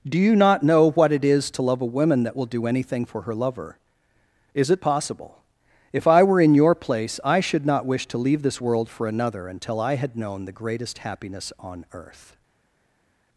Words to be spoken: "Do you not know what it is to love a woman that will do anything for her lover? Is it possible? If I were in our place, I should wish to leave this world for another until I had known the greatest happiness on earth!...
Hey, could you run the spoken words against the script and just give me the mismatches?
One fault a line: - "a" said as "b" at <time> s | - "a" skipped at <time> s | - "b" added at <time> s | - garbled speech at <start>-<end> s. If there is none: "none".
- "our" said as "your" at 6.5 s
- "not" added at 7.7 s